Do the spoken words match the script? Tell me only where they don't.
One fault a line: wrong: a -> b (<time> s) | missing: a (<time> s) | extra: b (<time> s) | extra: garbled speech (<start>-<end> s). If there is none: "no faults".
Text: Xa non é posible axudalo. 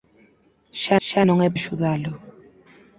extra: xa (1.1 s)
missing: posible (1.5 s)